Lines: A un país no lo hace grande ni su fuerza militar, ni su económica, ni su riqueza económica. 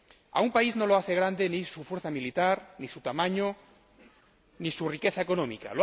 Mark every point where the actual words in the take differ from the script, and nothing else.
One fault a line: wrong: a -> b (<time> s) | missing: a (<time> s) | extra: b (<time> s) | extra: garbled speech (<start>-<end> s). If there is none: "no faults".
wrong: económica -> tamaño (3.0 s)